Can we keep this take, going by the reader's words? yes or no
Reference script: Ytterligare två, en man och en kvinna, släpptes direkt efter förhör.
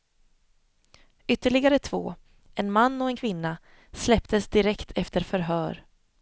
yes